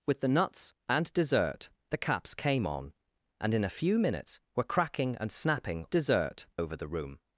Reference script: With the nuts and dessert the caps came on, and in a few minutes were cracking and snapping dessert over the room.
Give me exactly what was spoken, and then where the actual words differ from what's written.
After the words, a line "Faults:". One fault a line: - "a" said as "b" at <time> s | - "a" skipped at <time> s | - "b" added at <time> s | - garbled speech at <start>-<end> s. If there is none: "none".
With the nuts and dessert the caps came on, and in a few minutes were cracking and snapping dessert over the room.
Faults:
none